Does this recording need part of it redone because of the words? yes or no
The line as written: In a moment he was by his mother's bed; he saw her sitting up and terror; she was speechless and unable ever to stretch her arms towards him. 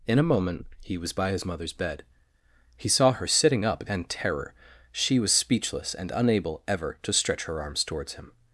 no